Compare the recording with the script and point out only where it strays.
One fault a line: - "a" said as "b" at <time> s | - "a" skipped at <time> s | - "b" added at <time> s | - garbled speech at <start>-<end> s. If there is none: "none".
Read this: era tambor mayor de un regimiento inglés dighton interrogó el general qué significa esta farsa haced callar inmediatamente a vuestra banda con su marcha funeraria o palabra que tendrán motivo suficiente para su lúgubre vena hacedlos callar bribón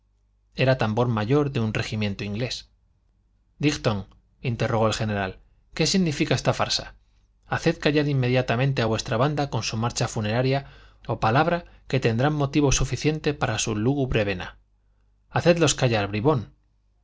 none